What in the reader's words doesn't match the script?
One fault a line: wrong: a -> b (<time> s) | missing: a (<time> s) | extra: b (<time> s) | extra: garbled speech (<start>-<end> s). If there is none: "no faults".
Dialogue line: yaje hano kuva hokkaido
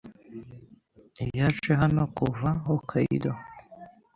no faults